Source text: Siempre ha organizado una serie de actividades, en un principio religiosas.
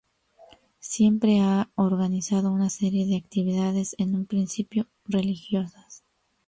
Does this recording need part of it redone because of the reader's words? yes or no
no